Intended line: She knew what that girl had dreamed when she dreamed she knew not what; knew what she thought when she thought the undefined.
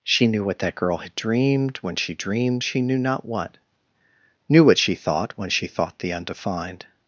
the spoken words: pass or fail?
pass